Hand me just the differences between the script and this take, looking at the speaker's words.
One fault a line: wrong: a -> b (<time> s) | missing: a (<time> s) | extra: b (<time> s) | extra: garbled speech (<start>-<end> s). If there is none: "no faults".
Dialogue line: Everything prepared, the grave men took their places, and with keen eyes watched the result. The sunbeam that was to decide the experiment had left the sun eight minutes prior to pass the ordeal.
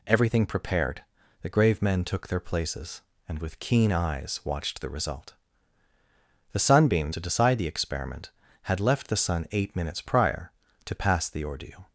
missing: that was (7.1 s)